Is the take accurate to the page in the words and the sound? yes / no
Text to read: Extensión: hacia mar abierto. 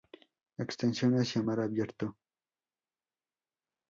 yes